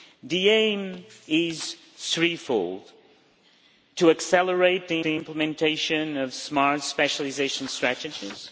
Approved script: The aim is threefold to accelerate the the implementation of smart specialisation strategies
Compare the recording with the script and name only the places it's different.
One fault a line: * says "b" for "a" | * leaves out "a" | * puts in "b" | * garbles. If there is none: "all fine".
all fine